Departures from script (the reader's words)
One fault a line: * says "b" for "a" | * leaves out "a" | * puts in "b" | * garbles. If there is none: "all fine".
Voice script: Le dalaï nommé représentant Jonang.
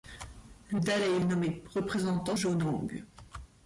all fine